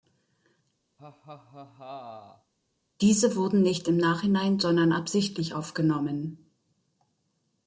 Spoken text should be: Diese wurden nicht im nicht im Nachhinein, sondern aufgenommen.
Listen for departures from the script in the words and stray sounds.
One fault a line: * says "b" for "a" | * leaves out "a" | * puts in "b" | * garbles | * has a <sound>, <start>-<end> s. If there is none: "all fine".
* has a laugh, 1.0-2.5 s
* leaves out "nicht im"
* puts in "absichtlich"